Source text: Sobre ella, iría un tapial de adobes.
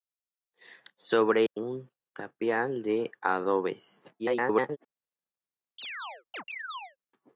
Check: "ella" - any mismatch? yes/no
yes